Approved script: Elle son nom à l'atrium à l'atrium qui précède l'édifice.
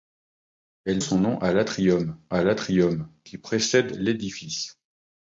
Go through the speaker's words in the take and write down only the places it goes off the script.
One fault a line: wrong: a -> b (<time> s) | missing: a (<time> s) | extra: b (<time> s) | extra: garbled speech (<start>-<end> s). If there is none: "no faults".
no faults